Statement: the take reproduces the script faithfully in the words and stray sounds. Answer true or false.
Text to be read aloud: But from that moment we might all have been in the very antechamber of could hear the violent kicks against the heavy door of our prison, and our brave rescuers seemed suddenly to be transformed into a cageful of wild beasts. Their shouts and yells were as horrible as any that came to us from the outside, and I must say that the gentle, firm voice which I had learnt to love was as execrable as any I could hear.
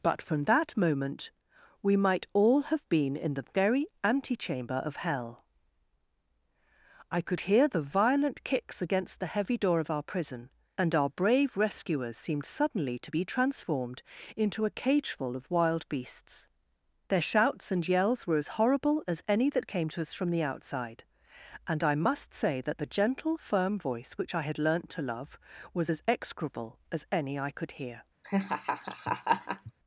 false